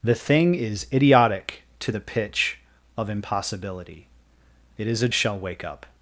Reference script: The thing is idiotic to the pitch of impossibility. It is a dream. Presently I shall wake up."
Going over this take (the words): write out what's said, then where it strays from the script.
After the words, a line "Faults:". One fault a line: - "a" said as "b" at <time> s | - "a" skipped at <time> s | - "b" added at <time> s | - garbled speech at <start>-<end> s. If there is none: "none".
The thing is idiotic to the pitch of impossibility. It is a shall wake up."
Faults:
- "dream Presently I" skipped at 5.1 s